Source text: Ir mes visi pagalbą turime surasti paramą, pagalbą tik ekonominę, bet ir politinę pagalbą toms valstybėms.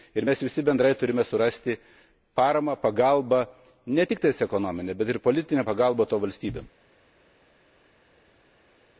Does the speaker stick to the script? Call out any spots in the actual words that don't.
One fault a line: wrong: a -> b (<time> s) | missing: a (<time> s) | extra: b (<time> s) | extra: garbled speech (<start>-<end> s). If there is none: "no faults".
wrong: pagalbą -> bendrai (0.6 s)
extra: ne (3.9 s)